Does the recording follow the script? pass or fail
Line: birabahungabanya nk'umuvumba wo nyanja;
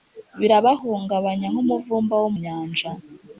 pass